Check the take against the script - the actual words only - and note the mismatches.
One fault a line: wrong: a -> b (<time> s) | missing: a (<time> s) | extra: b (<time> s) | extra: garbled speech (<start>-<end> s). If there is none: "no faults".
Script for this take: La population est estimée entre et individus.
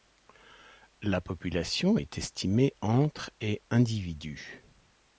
no faults